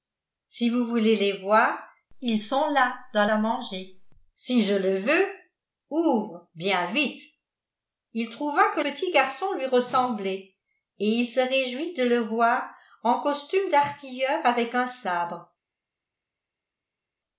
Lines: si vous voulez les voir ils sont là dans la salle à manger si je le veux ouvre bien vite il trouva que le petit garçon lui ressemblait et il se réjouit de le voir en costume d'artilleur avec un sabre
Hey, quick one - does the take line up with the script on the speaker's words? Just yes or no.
no